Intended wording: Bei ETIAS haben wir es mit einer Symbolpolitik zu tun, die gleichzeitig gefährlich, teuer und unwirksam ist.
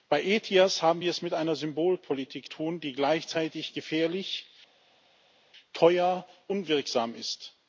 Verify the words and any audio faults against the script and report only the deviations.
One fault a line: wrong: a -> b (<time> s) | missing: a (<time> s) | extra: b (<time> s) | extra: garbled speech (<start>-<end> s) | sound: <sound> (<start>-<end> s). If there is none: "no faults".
missing: zu (2.5 s)
missing: und (6.3 s)